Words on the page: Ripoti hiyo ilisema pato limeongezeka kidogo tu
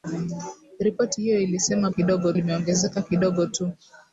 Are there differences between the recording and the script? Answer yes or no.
yes